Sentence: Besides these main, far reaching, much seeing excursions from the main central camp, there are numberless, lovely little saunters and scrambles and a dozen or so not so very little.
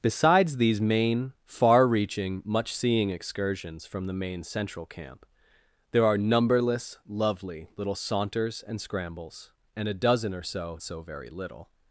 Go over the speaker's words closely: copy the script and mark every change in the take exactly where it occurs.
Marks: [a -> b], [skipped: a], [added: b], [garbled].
Besides these main, far reaching, much seeing excursions from the main central camp, there are numberless, lovely little saunters and scrambles and a dozen or so [skipped: not] so very little.